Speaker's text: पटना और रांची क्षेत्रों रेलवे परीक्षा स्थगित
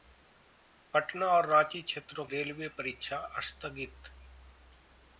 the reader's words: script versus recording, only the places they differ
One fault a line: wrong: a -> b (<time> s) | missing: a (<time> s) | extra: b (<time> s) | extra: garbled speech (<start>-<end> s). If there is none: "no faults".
no faults